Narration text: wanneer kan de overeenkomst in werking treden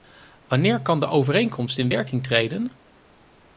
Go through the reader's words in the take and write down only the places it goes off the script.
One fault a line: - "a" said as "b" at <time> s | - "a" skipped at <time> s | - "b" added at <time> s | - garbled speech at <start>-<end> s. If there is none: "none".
none